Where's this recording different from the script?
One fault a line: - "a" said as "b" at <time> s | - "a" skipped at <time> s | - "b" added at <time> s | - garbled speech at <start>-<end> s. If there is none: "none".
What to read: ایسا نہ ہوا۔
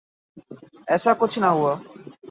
- "کچھ" added at 1.2 s